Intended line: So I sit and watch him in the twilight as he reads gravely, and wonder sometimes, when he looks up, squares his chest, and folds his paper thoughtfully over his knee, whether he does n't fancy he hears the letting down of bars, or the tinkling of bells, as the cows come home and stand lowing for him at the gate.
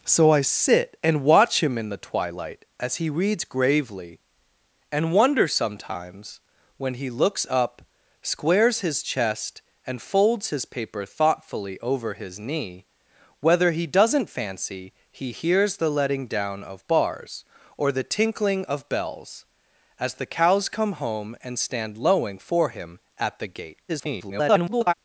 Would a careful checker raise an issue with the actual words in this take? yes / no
yes